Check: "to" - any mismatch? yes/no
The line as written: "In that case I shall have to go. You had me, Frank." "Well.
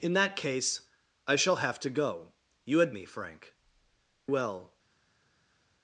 no